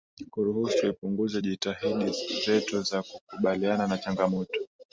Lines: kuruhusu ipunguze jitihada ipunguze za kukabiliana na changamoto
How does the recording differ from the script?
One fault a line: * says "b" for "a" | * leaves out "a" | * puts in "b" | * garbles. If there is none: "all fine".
* says "zetu" for "ipunguze"